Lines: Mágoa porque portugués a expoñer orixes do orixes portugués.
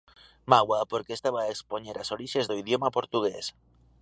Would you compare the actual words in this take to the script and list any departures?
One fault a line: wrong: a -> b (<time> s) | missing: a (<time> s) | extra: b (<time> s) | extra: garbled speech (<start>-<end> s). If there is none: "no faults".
wrong: portugués -> estaba (1.2 s)
extra: as (2.0 s)
wrong: orixes -> idioma (2.6 s)